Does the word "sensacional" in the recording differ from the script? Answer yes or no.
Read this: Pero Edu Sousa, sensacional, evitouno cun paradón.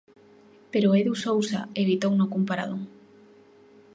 yes